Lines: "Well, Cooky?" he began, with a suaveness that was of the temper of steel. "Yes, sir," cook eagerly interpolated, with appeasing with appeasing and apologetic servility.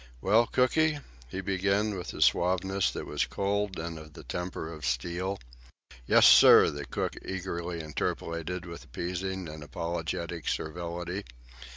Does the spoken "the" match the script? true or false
true